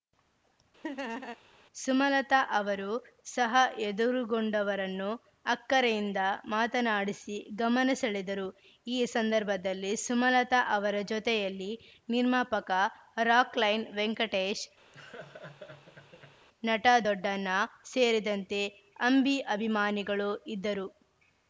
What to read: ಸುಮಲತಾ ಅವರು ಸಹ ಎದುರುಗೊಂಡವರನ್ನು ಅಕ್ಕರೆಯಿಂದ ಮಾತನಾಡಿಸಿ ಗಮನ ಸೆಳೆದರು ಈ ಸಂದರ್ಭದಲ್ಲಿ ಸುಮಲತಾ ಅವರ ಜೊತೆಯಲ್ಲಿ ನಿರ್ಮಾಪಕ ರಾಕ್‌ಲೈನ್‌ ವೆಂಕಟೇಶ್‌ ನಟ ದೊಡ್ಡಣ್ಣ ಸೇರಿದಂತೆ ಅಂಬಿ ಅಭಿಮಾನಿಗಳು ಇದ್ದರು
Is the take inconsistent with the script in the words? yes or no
no